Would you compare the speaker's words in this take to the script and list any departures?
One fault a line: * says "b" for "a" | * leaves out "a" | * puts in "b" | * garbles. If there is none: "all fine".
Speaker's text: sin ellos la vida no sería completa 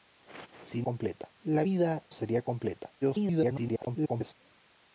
* says "completa" for "ellos"
* leaves out "no"
* garbles